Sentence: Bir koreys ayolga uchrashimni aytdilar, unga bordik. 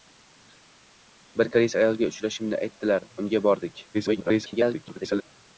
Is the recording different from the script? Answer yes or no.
yes